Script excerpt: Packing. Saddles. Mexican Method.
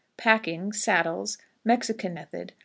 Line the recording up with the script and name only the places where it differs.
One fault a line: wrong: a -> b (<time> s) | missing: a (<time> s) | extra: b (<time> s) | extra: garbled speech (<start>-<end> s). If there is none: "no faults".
no faults